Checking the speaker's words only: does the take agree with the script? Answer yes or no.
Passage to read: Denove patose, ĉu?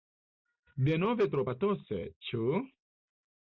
no